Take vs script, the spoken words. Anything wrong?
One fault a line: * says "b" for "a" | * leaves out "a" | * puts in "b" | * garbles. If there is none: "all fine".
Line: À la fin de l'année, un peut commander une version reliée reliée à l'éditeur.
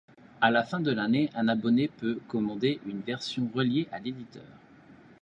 * puts in "abonné"
* leaves out "reliée"